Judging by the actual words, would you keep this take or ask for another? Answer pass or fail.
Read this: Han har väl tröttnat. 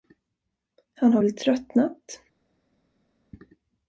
pass